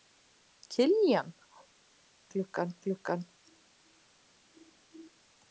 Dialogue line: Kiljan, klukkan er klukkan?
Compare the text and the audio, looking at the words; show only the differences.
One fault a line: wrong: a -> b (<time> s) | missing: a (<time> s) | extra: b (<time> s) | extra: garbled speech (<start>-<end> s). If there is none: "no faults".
no faults